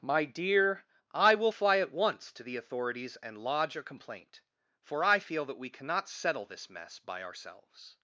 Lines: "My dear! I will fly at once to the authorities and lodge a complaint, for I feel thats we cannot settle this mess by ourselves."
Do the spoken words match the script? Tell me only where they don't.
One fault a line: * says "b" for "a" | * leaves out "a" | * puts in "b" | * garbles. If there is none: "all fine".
* says "that" for "thats"